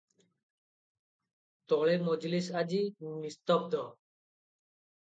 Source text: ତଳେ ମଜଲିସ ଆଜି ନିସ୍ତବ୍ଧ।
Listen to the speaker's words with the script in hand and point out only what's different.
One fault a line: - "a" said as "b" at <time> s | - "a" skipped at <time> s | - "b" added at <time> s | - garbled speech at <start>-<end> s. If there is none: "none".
none